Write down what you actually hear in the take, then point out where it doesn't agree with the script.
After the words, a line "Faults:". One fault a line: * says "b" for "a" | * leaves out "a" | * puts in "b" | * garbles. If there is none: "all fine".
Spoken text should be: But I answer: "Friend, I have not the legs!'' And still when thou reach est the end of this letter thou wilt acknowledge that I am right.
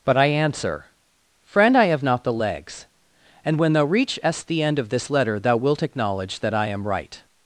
But I answer: "Friend, I have not the legs!'' And when thou reach est the end of this letter thou wilt acknowledge that I am right.
Faults:
* leaves out "still"